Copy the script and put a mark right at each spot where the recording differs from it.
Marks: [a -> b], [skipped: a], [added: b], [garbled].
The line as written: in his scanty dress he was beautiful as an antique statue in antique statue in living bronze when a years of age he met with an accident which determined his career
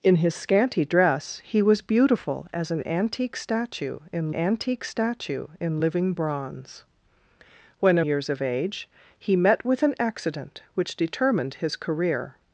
in his scanty dress he was beautiful as an antique statue in antique statue in living bronze when a years of age he met with an accident which determined his career